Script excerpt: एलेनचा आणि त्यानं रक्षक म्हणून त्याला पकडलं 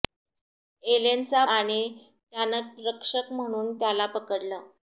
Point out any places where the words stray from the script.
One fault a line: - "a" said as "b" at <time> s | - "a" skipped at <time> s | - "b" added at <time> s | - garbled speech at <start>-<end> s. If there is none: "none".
none